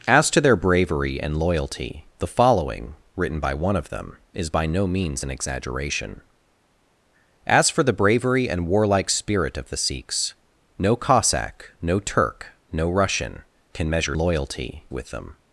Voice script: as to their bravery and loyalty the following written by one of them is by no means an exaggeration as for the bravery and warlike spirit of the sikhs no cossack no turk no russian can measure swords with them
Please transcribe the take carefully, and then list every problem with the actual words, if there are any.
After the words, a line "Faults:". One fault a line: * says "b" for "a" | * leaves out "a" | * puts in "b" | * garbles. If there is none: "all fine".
as to their bravery and loyalty the following written by one of them is by no means an exaggeration as for the bravery and warlike spirit of the sikhs no cossack no turk no russian can measure loyalty with them
Faults:
* says "loyalty" for "swords"